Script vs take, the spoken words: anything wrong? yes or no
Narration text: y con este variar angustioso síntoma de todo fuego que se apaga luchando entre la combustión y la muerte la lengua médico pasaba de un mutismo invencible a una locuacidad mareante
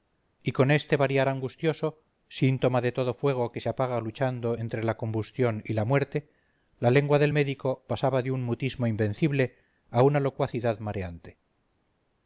yes